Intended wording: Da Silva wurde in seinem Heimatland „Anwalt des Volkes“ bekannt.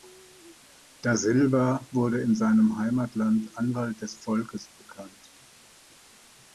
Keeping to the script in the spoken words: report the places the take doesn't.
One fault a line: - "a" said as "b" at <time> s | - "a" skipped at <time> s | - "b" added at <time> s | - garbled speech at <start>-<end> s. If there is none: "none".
none